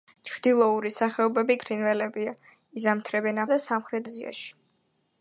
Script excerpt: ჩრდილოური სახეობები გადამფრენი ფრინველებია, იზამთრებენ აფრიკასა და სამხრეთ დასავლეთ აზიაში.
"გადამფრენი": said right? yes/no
no